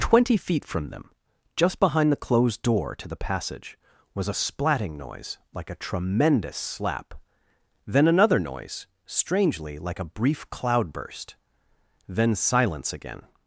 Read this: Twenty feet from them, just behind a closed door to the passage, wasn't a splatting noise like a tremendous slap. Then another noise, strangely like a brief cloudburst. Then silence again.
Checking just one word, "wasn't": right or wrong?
wrong